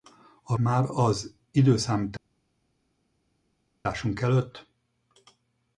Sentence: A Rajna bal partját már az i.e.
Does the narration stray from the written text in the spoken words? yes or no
yes